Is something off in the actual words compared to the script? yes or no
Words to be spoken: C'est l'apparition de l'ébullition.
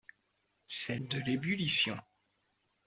yes